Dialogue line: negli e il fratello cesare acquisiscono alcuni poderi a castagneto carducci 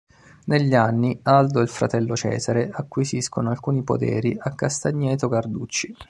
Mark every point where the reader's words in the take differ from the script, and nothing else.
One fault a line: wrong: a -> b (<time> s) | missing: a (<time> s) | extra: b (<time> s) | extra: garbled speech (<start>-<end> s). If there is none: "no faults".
extra: anni aldo (0.7 s)